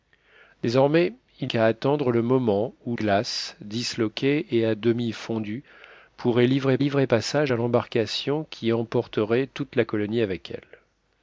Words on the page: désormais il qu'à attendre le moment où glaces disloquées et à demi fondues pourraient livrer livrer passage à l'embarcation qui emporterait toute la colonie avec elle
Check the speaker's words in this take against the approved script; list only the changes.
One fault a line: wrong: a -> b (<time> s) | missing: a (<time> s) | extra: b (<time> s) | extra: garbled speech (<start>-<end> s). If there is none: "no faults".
no faults